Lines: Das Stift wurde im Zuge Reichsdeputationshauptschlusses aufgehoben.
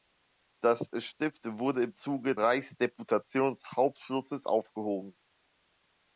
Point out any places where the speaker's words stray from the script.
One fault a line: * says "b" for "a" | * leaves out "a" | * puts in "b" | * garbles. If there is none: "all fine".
all fine